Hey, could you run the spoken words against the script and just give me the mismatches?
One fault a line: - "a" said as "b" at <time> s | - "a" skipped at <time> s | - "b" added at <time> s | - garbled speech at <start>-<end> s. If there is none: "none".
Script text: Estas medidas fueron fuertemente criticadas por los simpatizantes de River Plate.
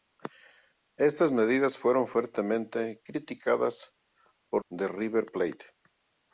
- "los simpatizantes" skipped at 4.6 s